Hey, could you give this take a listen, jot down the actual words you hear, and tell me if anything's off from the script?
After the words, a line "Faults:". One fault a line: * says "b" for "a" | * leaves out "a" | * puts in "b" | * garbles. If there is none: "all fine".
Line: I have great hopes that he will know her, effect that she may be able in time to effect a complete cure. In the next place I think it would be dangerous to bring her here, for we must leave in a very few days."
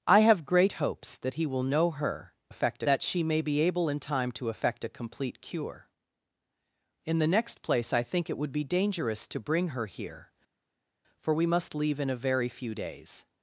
I have great hopes that he will know her, effect that she may be able in time to effect a complete cure. In the next place I think it would be dangerous to bring her here, for we must leave in a very few days."
Faults:
all fine